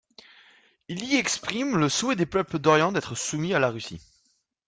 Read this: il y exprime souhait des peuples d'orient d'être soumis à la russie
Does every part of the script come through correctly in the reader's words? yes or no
no